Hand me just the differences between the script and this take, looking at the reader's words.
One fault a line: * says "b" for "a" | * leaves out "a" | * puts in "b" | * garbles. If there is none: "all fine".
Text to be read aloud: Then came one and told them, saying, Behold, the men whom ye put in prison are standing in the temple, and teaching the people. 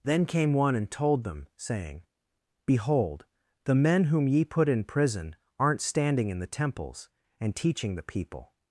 * says "aren't" for "are"
* says "temples" for "temple"